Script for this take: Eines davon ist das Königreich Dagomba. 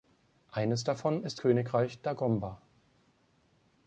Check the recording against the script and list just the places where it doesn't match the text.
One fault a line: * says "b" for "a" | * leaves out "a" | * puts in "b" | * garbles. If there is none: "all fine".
* leaves out "das"